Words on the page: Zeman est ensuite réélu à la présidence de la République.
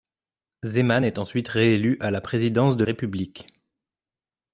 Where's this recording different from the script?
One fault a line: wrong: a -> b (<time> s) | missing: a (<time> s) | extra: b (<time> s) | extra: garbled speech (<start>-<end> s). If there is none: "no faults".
missing: la (2.9 s)